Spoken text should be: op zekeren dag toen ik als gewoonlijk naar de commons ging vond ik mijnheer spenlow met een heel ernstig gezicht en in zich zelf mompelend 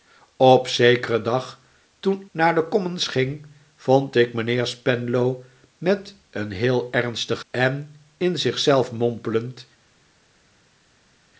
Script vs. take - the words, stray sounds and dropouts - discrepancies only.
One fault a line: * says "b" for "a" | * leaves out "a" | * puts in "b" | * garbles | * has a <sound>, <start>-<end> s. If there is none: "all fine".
* leaves out "ik als gewoonlijk"
* leaves out "gezicht"